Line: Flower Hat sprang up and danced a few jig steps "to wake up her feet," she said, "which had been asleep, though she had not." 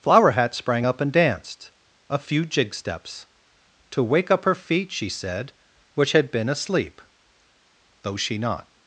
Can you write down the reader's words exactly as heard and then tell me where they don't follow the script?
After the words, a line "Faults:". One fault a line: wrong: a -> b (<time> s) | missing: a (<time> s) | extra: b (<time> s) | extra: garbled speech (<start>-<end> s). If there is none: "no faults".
Flower Hat sprang up and danced a few jig steps "to wake up her feet," she said, "which had been asleep, though she not."
Faults:
missing: had (8.4 s)